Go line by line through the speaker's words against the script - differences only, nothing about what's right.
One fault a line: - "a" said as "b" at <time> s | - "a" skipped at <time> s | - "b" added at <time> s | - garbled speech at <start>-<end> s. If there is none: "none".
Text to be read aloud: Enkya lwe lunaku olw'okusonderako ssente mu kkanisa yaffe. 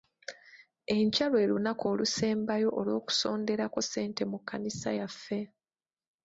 - "olusembayo" added at 1.9 s